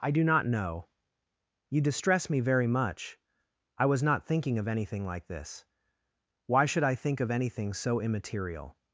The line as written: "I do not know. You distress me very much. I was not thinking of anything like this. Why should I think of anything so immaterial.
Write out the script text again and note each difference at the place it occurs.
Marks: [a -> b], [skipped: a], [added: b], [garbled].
"I do not know. You distress me very much. I was not thinking of anything like this. Why should I think of anything so immaterial.